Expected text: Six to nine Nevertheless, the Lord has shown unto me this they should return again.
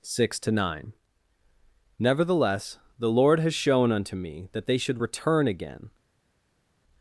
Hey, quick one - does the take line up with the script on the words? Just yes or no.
no